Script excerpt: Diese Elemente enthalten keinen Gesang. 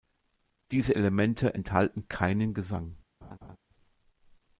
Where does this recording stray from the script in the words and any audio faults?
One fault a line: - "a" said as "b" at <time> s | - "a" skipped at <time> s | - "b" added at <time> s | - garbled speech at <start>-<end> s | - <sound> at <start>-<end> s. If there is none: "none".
- laugh at 3.2-3.6 s